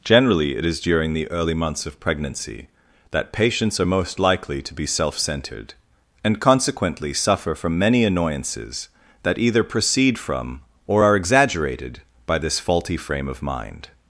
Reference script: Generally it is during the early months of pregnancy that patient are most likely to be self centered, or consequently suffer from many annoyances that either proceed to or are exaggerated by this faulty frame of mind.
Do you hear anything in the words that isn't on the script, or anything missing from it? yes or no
yes